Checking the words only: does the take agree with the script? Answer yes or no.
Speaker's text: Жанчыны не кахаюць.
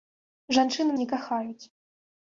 yes